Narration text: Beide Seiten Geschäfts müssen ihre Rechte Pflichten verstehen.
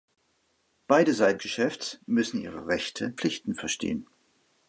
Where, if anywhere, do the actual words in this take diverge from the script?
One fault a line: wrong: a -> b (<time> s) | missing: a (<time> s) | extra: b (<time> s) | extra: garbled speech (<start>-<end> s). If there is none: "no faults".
no faults